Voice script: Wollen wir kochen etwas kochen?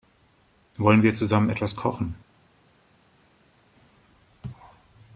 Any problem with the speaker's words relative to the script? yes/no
yes